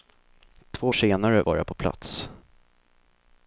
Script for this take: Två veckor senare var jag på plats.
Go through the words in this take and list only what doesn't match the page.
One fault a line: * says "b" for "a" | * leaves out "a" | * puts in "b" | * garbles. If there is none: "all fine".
* leaves out "veckor"